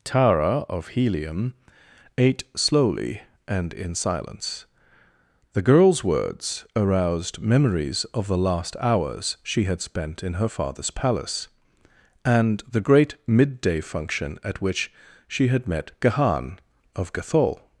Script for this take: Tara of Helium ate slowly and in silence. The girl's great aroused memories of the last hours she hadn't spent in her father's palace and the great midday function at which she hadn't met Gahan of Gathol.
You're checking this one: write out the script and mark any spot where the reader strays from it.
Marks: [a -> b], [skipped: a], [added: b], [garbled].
Tara of Helium ate slowly and in silence. The girl's [great -> words] aroused memories of the last hours she [hadn't -> had] spent in her father's palace and the great midday function at which she [hadn't -> had] met Gahan of Gathol.